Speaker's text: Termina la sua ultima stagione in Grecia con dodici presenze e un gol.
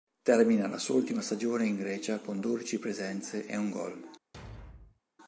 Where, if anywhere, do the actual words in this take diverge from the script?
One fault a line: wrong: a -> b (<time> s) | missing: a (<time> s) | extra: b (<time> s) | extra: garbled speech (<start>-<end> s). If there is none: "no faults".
no faults